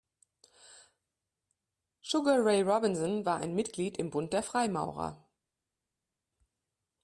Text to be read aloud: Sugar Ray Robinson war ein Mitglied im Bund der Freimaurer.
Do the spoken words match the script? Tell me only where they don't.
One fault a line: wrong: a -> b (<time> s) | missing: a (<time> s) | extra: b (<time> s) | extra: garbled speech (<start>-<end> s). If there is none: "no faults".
no faults